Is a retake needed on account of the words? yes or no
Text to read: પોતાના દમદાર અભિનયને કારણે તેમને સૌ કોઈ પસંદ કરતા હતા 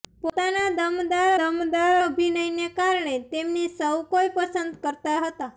yes